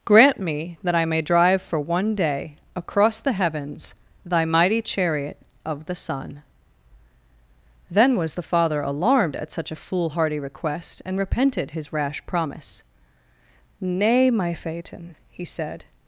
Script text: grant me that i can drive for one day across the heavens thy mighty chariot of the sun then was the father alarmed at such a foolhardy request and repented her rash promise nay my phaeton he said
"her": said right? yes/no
no